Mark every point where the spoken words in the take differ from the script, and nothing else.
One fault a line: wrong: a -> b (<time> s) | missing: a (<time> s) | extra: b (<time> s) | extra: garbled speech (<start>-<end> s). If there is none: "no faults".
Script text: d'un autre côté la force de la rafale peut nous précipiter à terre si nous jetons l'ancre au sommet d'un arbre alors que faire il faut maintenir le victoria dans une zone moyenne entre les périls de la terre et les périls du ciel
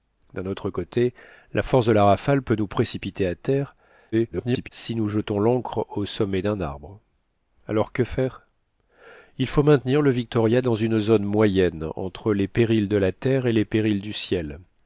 extra: garbled speech (4.1-4.7 s)